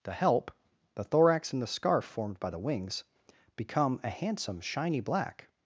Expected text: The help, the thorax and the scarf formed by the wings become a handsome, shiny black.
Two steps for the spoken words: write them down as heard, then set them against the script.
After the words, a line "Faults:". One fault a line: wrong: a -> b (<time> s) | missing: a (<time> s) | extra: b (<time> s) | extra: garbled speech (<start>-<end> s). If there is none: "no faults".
The help, the thorax and the scarf formed by the wings become a handsome, shiny black.
Faults:
no faults